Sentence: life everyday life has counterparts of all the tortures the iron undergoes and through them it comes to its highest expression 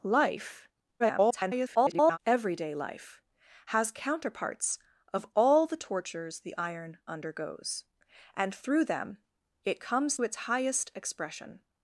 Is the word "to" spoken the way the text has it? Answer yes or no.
no